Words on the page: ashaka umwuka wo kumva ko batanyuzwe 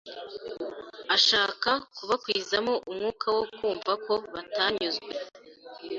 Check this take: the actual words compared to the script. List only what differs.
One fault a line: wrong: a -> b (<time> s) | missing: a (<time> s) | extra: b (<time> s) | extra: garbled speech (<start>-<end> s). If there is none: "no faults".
extra: kubakwizamo (1.9 s)